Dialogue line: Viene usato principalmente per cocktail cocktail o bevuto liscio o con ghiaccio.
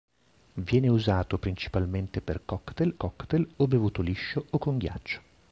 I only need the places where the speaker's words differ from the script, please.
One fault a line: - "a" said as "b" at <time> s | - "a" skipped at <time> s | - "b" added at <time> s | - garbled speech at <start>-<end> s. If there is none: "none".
none